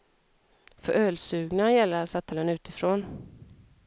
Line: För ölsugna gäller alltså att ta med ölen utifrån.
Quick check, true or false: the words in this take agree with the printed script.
false